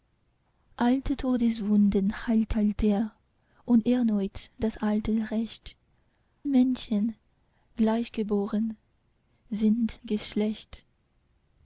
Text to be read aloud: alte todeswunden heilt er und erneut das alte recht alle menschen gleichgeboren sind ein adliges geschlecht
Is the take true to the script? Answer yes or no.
no